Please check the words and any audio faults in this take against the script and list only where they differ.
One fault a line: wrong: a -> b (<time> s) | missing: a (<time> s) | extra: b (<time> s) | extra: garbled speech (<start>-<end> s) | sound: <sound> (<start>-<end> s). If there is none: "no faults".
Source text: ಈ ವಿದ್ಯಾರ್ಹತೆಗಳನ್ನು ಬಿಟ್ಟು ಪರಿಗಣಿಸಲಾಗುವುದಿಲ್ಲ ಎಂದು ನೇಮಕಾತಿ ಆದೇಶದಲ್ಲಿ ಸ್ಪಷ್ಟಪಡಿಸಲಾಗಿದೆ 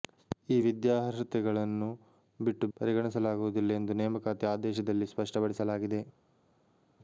no faults